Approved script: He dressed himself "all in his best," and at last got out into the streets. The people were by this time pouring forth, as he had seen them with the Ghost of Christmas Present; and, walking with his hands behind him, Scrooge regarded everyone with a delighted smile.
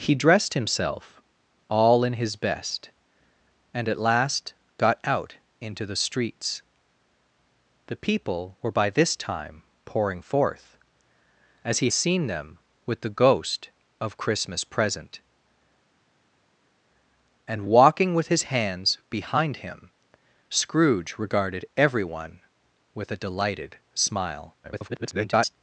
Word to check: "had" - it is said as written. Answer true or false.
false